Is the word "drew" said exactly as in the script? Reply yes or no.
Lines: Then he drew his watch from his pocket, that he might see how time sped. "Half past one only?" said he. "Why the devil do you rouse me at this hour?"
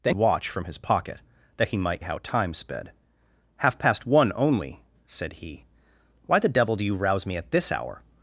no